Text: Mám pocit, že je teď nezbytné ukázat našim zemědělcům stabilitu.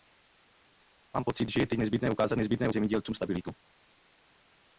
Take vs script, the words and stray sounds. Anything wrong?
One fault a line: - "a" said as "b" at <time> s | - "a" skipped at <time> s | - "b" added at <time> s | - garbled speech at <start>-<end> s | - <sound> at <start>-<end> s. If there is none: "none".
- "našim" said as "nezbytné" at 2.4 s